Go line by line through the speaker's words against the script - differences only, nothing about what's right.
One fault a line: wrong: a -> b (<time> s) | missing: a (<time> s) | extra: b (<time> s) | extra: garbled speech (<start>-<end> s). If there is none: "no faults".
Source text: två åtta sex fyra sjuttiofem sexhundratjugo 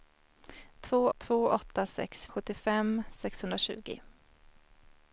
extra: två (1.2 s)
missing: fyra (2.3 s)